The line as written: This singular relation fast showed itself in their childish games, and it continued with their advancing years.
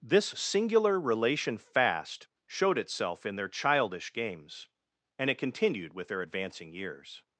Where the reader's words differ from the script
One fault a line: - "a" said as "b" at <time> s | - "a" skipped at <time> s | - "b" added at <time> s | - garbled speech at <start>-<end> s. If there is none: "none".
none